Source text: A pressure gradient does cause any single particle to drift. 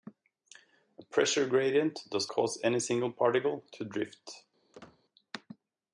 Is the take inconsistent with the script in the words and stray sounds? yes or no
yes